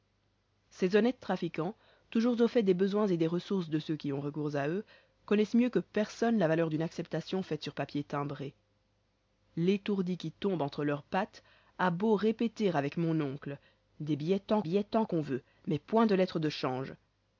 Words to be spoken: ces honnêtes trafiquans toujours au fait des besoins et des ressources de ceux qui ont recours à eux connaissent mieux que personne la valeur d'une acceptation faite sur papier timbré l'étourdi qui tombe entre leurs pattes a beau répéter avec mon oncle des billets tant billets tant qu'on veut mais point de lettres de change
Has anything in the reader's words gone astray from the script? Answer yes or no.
no